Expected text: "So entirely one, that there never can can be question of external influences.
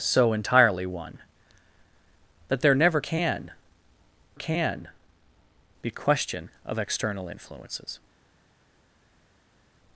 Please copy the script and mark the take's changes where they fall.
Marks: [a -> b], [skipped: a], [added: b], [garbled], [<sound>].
"So entirely one, that there never can can be question of external influences.